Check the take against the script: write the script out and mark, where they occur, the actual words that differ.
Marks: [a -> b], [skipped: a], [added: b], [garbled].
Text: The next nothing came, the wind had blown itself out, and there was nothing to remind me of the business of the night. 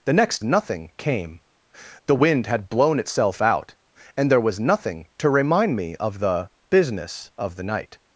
The next nothing came, the wind had blown itself out, and there was nothing to remind me of the business of the night.